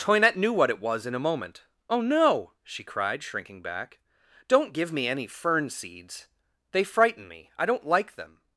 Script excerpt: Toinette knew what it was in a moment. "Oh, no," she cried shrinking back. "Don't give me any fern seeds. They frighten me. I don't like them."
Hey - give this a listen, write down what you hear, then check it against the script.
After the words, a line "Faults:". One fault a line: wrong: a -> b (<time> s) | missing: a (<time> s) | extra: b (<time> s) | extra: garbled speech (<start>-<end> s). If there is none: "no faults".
Toinette knew what it was in a moment. "Oh, no," she cried shrinking back. "Don't give me any fern seeds. They frighten me. I don't like them."
Faults:
no faults